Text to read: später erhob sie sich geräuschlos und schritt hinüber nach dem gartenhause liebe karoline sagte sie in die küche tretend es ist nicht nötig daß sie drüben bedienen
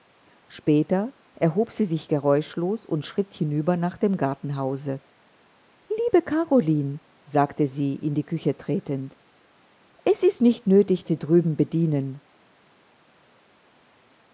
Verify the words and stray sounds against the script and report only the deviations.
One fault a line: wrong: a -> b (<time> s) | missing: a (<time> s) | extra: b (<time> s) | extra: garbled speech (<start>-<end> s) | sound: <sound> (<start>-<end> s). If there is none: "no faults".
missing: daß (11.0 s)